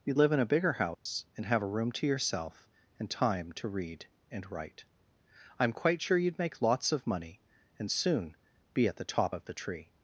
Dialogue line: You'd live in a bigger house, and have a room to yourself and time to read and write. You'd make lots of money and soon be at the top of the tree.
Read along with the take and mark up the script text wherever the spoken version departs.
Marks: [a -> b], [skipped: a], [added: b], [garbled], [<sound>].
You'd live in a bigger house, [dropout] and have a room to yourself and time to read and write. [added: I'm quite sure] You'd make lots of money and soon be at the top of the tree.